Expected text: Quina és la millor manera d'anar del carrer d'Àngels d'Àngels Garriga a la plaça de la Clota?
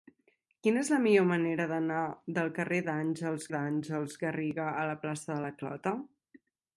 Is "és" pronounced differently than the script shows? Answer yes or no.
no